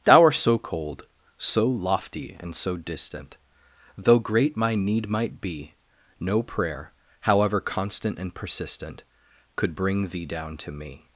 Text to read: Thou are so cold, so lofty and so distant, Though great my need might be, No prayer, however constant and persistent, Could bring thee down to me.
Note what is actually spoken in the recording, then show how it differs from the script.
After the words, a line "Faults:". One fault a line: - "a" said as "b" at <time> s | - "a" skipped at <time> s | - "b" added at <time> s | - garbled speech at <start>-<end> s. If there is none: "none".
Thou art so cold, so lofty and so distant, Though great my need might be, No prayer, however constant and persistent, Could bring thee down to me.
Faults:
- "are" said as "art" at 0.2 s